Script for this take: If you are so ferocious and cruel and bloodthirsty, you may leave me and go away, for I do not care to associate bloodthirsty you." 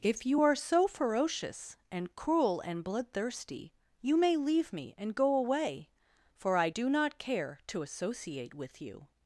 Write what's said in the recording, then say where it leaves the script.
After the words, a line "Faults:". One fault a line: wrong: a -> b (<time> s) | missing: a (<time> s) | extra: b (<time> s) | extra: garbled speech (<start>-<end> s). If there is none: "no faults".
If you are so ferocious and cruel and bloodthirsty, you may leave me and go away, for I do not care to associate with you."
Faults:
wrong: bloodthirsty -> with (8.5 s)